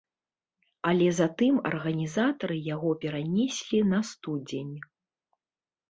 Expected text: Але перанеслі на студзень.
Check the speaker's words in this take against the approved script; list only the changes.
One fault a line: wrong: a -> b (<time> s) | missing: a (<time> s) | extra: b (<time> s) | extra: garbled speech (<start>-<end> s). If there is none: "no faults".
extra: затым арганізатары яго (1.2 s)